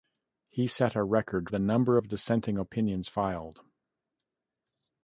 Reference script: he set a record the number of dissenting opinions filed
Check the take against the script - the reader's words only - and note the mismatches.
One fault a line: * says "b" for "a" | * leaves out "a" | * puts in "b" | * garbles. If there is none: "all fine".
all fine